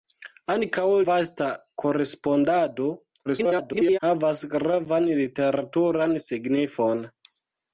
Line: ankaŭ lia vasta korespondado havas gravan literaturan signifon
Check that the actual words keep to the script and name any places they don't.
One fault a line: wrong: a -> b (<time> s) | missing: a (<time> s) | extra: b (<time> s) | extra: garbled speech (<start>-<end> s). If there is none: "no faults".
missing: lia (0.8 s)
extra: garbled speech (3.3-4.0 s)